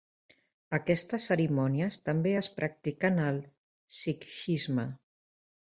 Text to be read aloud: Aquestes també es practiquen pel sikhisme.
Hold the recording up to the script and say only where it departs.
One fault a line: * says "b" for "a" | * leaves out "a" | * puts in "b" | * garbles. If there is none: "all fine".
* puts in "cerimònies"
* says "al" for "pel"